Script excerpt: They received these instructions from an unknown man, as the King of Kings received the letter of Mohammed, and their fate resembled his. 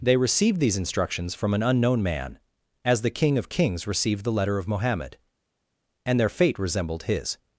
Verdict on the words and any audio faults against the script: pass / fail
pass